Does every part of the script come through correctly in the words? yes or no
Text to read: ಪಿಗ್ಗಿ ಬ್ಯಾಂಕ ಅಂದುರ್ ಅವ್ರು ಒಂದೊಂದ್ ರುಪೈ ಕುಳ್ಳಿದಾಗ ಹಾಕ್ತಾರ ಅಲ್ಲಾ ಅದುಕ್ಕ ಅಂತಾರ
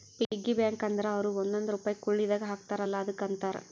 yes